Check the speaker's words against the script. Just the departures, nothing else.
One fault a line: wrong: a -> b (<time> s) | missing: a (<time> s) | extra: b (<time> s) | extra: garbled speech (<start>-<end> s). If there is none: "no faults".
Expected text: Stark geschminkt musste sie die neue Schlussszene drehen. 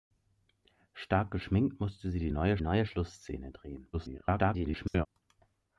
extra: neue (2.6 s)
extra: garbled speech (3.9-5.1 s)